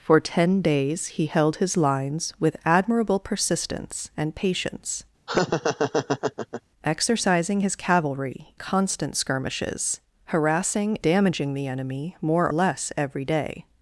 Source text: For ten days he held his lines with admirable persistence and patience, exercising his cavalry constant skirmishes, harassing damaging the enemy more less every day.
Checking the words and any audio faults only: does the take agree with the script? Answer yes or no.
no